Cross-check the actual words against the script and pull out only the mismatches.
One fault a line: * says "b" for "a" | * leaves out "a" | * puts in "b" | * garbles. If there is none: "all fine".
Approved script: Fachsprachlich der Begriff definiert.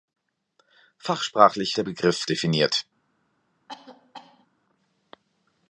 all fine